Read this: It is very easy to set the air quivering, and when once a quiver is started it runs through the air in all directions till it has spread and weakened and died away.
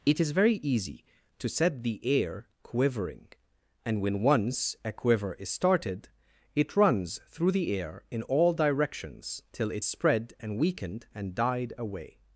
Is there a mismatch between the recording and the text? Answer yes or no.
yes